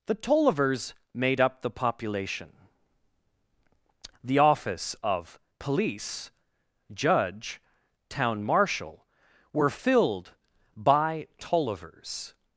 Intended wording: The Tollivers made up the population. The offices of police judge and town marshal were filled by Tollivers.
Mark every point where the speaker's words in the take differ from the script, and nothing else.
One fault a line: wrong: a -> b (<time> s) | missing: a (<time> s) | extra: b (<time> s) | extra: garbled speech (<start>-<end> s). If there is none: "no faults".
wrong: offices -> office (4.4 s)
missing: and (7.6 s)